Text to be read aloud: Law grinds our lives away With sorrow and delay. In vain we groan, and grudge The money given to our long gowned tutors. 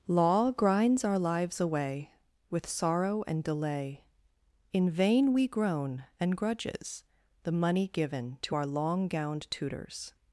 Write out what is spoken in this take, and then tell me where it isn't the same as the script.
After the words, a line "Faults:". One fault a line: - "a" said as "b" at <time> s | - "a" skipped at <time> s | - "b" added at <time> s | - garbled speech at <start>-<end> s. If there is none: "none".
Law grinds our lives away With sorrow and delay. In vain we groan, and grudges The money given to our long gowned tutors.
Faults:
- "grudge" said as "grudges" at 6.3 s